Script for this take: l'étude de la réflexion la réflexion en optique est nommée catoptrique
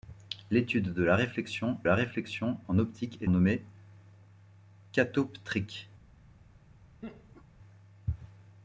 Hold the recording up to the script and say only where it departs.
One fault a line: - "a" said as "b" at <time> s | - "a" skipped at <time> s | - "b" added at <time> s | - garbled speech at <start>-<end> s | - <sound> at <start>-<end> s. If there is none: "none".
- laugh at 7.0-7.4 s